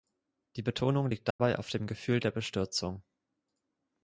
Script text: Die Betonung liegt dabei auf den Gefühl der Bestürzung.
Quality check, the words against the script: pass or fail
fail